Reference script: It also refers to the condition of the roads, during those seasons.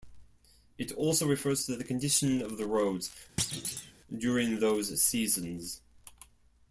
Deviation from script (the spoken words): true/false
false